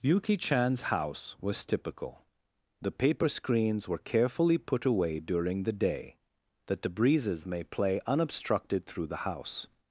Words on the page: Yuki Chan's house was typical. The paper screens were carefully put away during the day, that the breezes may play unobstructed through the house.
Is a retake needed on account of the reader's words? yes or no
no